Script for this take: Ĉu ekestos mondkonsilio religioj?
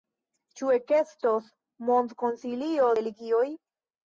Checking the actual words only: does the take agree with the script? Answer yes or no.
yes